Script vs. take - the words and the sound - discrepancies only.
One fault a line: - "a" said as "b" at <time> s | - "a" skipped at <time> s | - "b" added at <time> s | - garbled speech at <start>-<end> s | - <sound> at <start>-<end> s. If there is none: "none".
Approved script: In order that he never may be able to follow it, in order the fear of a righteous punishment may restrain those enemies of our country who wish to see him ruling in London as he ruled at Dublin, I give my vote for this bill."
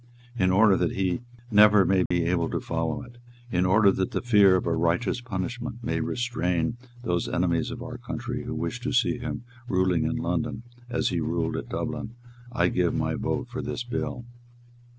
- dropout at 2.1-2.1 s
- "that" added at 3.9 s